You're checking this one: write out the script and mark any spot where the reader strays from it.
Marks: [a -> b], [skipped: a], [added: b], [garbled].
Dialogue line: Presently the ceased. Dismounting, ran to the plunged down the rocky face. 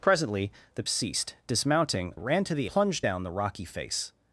Presently the ceased. Dismounting, ran to the plunged down the rocky face.